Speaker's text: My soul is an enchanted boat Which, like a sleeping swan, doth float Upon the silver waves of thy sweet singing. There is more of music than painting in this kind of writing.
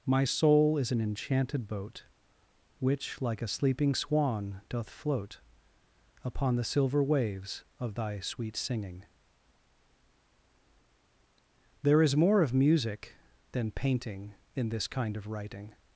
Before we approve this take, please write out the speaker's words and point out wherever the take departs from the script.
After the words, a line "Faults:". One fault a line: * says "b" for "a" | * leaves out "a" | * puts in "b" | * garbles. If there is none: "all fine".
My soul is an enchanted boat Which, like a sleeping swan, doth float Upon the silver waves of thy sweet singing. There is more of music than painting in this kind of writing.
Faults:
all fine